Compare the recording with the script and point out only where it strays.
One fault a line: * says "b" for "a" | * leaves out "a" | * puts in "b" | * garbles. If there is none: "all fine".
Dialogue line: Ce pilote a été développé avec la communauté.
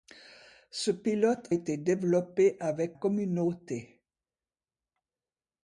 * leaves out "a"
* leaves out "la"